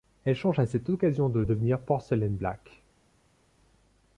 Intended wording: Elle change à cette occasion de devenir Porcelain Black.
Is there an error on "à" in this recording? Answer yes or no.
no